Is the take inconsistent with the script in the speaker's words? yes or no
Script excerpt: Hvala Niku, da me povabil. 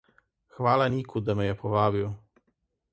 yes